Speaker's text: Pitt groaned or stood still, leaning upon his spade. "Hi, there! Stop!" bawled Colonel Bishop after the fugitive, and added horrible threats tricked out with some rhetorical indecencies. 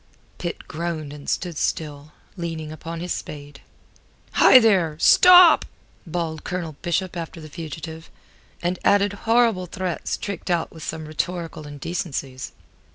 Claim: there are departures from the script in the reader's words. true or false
true